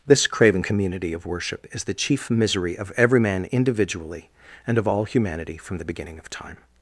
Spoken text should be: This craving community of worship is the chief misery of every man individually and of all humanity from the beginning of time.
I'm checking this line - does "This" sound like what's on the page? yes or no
yes